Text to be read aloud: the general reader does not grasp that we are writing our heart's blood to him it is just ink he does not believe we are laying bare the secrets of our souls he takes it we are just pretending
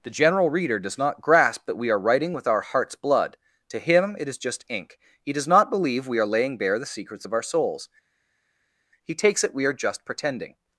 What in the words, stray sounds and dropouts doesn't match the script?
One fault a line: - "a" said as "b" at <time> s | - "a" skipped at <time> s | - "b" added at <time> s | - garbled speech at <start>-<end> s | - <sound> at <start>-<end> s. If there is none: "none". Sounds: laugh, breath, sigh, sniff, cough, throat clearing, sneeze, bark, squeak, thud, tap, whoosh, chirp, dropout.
- "with" added at 2.3 s